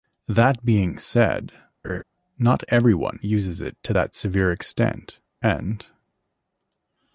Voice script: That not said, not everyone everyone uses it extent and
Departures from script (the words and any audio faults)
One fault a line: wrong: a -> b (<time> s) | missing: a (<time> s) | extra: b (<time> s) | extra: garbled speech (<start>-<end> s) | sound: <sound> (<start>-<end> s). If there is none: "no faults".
wrong: not -> being (0.7 s)
sound: laugh (1.8-2.0 s)
missing: everyone (3.2 s)
extra: to that severe (3.8 s)